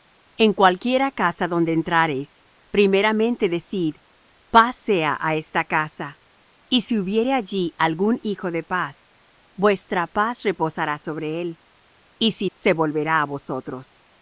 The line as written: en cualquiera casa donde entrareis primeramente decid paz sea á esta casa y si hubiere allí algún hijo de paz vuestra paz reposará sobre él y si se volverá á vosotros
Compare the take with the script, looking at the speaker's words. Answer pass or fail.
pass